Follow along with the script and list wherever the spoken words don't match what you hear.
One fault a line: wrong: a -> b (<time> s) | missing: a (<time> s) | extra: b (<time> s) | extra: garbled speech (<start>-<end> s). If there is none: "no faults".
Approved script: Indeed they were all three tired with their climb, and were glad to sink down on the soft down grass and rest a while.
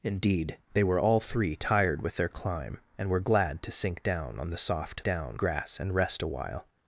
no faults